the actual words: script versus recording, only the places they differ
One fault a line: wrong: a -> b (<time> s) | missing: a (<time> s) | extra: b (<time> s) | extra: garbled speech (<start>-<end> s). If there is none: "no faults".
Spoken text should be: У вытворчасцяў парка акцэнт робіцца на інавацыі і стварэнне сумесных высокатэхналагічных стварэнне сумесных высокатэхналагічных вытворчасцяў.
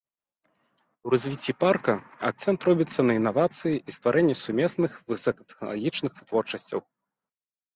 wrong: вытворчасцяў -> развіцці (1.1 s)
missing: стварэнне сумесных высокатэхналагічных (6.1 s)